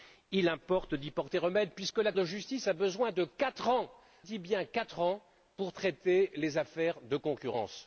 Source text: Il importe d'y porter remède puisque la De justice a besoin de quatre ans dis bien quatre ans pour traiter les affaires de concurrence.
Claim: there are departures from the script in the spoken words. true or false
false